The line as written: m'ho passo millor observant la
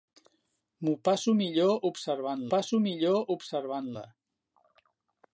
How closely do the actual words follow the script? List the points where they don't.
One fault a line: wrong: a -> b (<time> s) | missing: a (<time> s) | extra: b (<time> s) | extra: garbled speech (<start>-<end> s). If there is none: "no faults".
extra: passo millor observant (2.5 s)